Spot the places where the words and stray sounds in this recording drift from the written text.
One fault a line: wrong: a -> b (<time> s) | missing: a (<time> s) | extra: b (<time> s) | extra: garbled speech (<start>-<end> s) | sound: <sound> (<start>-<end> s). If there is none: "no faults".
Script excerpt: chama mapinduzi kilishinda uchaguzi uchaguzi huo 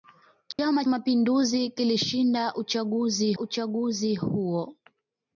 sound: dropout (0.5-0.6 s)